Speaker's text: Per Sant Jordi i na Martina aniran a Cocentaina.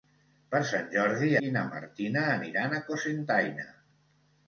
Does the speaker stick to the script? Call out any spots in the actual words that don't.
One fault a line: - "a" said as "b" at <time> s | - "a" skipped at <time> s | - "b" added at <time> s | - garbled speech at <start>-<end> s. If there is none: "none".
none